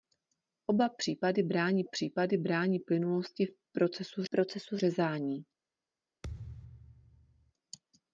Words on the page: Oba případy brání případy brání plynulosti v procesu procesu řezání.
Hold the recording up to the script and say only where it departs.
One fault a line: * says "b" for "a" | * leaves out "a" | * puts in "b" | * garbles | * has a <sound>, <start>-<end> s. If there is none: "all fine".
* has a thud, 6.2-7.5 s